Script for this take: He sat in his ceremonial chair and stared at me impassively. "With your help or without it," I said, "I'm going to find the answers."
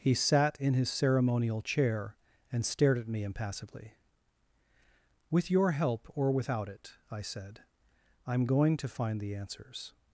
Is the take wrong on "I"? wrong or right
right